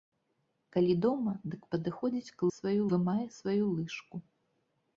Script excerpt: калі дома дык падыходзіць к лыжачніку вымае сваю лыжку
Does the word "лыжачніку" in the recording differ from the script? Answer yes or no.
yes